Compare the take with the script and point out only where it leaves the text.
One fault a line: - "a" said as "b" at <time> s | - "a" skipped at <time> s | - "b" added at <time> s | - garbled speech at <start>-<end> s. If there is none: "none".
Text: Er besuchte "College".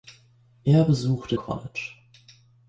none